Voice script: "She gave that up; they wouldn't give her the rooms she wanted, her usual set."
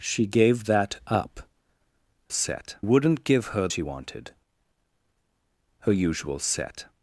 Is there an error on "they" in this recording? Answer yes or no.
yes